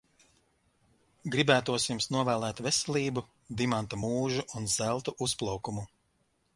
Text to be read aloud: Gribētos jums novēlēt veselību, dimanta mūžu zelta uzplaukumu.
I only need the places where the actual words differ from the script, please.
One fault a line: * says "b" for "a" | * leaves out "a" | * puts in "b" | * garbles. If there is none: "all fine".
* puts in "un"